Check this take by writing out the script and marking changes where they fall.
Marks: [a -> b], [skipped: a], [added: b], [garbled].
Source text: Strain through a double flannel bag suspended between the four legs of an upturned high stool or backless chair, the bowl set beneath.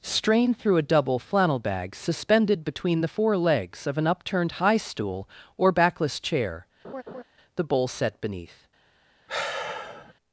Strain through a double flannel bag suspended between the four legs of an upturned high stool or backless chair, the bowl set beneath.